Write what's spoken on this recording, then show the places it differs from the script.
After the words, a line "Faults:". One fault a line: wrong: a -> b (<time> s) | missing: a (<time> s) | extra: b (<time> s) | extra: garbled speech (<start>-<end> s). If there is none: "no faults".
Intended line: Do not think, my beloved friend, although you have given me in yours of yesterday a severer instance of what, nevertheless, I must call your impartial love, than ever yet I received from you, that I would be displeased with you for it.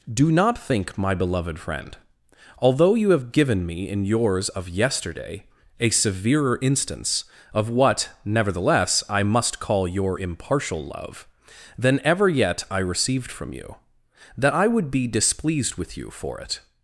Do not think, my beloved friend, although you have given me in yours of yesterday a severer instance of what, nevertheless, I must call your impartial love, than ever yet I received from you, that I would be displeased with you for it.
Faults:
no faults